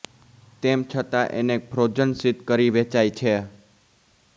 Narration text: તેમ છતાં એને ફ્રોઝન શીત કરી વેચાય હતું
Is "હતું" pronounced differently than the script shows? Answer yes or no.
yes